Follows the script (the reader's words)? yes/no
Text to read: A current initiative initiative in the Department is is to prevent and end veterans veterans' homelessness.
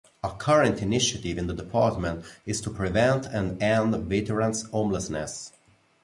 no